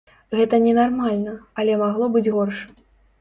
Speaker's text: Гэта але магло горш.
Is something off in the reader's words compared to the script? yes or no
yes